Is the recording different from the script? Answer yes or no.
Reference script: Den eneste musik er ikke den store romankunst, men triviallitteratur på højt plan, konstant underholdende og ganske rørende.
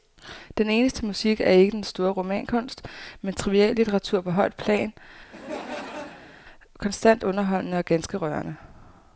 no